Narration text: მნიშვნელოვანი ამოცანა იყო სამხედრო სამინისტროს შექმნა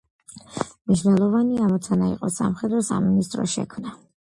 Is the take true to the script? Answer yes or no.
yes